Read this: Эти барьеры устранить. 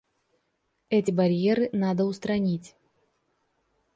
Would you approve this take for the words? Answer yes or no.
no